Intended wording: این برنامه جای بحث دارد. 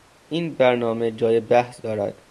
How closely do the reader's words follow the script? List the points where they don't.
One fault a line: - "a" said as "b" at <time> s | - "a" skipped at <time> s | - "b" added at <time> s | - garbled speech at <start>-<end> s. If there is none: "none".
none